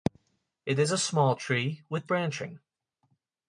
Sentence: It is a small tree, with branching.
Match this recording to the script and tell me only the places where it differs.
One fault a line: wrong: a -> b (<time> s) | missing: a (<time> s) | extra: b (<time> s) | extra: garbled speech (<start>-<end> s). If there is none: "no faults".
no faults